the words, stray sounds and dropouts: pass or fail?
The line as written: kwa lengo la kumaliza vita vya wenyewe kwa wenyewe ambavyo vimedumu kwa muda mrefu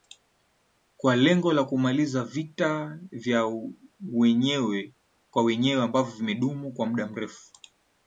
pass